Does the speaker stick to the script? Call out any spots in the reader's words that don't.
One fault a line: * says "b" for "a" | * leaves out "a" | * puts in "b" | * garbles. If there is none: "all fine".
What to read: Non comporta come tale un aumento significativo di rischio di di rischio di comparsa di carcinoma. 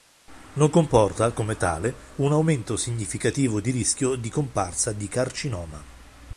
* leaves out "di rischio di"